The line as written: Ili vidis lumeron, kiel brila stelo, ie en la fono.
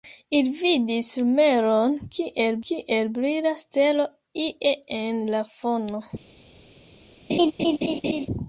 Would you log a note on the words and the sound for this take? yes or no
yes